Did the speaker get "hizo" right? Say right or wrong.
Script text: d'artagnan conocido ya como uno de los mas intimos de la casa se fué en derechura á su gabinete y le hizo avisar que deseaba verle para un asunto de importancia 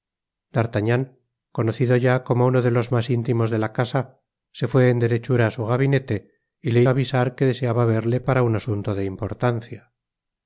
wrong